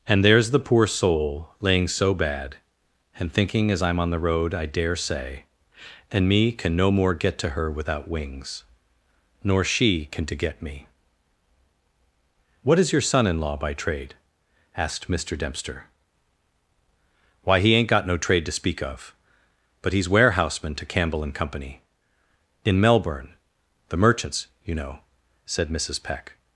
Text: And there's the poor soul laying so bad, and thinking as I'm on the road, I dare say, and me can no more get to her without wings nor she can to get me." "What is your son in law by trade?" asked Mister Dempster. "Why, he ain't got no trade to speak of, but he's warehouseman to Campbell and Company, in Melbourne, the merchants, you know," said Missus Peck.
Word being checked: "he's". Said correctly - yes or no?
yes